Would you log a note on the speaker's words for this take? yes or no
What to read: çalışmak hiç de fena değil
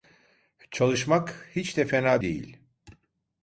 no